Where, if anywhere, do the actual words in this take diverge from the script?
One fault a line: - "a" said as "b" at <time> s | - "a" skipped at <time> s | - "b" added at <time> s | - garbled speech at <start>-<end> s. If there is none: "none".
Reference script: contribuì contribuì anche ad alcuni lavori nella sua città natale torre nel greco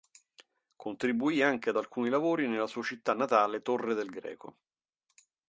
- "contribuì" skipped at 1.4 s
- "nel" said as "del" at 3.9 s